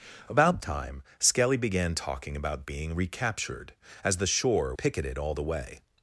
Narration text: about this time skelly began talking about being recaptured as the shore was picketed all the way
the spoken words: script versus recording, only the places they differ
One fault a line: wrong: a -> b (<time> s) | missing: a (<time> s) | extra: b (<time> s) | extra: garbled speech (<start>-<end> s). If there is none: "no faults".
missing: this (0.6 s)
missing: was (4.7 s)